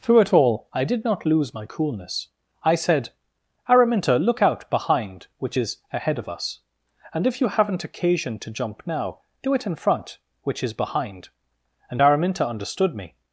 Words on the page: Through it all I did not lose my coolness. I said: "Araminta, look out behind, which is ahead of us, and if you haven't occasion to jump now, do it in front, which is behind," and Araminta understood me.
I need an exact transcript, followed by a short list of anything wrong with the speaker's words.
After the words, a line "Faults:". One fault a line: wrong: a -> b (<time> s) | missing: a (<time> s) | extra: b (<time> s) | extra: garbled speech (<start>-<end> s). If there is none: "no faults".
Through it all I did not lose my coolness. I said: "Araminta, look out behind, which is ahead of us, and if you haven't occasion to jump now, do it in front, which is behind," and Araminta understood me.
Faults:
no faults